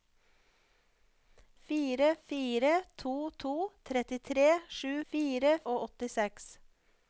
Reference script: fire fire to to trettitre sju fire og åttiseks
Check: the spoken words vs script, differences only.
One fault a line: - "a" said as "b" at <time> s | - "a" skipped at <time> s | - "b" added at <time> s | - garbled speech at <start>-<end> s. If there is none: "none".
none